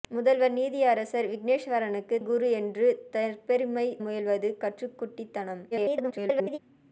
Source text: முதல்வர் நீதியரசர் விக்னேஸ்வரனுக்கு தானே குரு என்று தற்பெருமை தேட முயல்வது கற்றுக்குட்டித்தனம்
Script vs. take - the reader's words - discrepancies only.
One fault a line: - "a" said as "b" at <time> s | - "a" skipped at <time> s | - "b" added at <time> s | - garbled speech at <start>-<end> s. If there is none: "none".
- "தானே" skipped at 2.2 s
- "தேட" skipped at 3.9 s
- garbled speech at 5.7-6.6 s